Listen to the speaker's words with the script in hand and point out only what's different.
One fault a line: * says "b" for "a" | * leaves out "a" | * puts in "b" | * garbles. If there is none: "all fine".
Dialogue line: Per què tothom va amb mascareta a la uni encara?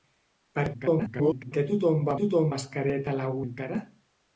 * garbles
* says "tothom" for "amb"
* leaves out "uni"